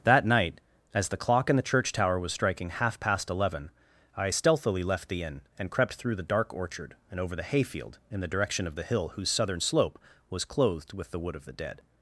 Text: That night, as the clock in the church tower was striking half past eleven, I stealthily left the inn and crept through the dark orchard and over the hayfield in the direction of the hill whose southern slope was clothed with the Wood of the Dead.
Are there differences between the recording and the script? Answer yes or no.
no